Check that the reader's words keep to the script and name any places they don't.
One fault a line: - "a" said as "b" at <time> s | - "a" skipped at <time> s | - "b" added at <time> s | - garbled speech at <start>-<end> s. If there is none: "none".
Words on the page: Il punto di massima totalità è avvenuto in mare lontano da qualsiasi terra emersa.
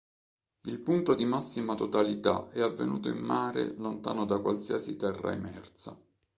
none